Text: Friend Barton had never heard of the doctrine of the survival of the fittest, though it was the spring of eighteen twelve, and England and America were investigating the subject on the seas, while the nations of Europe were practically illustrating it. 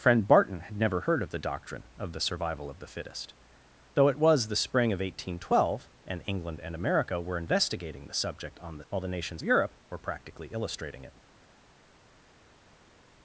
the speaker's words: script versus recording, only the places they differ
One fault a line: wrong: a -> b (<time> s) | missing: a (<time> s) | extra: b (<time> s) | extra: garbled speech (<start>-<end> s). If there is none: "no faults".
missing: seas (8.8 s)
missing: of (9.4 s)